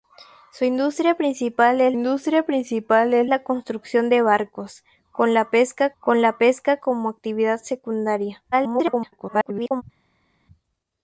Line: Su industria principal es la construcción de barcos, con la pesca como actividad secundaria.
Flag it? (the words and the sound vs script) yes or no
yes